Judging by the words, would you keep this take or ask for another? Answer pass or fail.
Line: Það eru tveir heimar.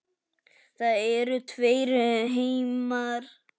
pass